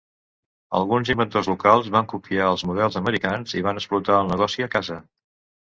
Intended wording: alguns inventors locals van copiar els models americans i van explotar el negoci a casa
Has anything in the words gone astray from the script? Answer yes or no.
no